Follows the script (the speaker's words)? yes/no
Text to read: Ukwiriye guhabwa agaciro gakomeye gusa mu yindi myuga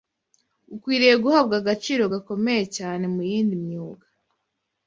no